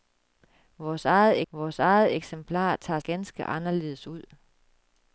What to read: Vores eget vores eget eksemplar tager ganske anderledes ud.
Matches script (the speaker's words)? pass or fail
pass